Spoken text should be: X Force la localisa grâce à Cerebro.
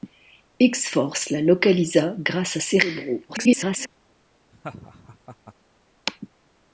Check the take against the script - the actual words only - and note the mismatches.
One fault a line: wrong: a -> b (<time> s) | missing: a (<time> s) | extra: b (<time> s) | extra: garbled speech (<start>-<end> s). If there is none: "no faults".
extra: garbled speech (3.3-3.9 s)